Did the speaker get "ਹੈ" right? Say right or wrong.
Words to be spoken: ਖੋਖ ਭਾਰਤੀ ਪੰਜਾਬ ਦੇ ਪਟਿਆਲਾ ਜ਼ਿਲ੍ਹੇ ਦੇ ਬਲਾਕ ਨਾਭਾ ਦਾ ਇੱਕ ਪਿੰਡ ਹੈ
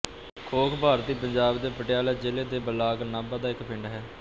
right